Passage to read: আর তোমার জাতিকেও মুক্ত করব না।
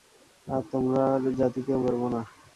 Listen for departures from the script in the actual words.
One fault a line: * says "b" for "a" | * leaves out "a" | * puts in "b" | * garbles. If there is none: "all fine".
* leaves out "মুক্ত"